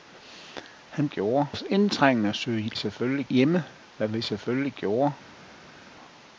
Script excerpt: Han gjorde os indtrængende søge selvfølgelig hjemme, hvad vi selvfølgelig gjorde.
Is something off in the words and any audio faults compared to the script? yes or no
no